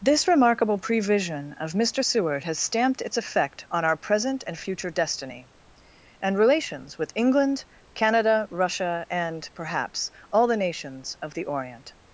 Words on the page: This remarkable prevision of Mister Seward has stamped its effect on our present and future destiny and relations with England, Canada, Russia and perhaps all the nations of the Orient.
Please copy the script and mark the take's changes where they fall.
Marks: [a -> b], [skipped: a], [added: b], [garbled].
This remarkable prevision of Mister Seward has stamped its effect on our present and future destiny and relations with England, Canada, Russia and perhaps all the nations of the Orient.